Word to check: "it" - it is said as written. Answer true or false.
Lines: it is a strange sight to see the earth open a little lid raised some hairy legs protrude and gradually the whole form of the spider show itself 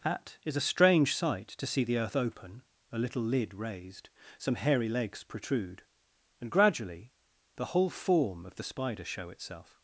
false